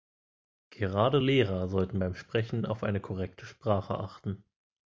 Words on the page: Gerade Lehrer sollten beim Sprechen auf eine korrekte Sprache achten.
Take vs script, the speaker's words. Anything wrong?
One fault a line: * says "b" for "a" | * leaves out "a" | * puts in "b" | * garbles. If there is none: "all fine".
all fine